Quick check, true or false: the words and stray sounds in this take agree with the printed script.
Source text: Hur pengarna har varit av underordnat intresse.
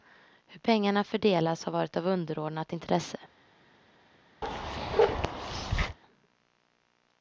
false